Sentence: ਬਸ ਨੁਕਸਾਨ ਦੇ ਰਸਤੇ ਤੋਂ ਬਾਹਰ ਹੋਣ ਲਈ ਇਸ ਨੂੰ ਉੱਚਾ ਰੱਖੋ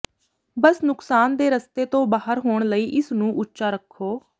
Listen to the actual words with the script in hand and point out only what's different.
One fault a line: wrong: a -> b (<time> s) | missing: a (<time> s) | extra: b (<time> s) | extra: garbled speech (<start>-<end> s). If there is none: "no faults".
no faults